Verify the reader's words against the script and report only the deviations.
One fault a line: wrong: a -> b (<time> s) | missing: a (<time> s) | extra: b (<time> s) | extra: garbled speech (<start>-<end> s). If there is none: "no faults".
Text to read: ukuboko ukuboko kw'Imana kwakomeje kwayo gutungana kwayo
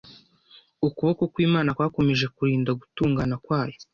missing: ukuboko (1.2 s)
wrong: kwayo -> kurinda (2.4 s)